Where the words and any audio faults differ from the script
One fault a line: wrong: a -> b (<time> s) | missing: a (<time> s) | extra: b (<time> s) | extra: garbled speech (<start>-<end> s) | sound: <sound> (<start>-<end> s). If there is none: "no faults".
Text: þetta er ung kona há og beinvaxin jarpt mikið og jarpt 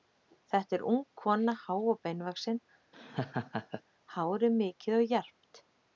sound: laugh (2.9-3.8 s)
wrong: jarpt -> hárið (4.2 s)